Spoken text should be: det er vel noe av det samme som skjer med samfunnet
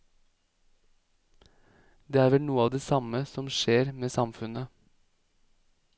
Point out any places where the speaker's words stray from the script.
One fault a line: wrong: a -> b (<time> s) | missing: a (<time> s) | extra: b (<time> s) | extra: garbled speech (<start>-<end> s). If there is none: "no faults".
no faults